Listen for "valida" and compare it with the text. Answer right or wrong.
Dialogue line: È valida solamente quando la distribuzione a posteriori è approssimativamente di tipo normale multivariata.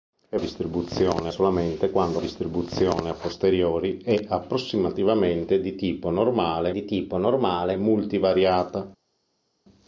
wrong